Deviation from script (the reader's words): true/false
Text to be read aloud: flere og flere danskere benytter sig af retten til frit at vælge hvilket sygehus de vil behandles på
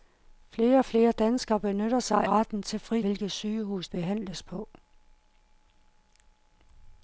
true